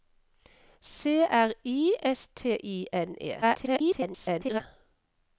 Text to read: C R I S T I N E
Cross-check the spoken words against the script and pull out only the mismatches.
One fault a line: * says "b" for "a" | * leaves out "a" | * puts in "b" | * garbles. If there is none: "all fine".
* garbles